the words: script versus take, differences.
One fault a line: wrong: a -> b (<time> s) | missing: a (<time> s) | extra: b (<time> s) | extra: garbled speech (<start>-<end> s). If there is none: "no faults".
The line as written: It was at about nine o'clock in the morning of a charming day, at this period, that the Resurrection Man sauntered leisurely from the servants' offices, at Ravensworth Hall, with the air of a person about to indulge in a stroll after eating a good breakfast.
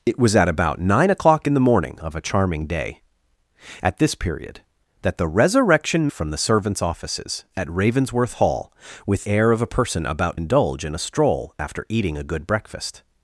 missing: Man sauntered leisurely (6.1 s)
missing: the (9.3 s)
missing: to (10.4 s)